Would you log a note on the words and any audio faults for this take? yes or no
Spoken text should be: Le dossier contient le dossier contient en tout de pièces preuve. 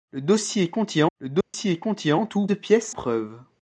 yes